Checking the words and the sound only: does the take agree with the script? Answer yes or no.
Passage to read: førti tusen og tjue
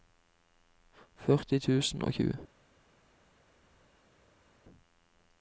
yes